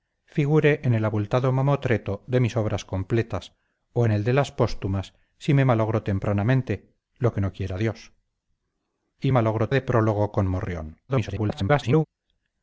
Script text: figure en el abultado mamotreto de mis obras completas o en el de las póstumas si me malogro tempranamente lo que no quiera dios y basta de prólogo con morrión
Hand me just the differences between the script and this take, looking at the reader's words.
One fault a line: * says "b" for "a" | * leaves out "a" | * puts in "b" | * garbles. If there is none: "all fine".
* says "malogro" for "basta"
* garbles